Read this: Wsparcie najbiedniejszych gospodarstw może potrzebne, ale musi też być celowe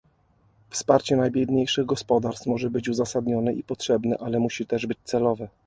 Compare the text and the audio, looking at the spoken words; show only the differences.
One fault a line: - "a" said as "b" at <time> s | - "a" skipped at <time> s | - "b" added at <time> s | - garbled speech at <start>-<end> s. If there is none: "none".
- "być uzasadnione i" added at 2.7 s